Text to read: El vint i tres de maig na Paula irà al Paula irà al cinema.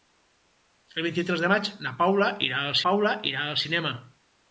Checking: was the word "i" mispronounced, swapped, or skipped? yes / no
no